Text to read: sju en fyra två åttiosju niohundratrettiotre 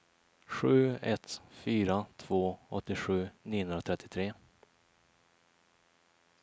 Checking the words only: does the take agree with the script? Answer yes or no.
no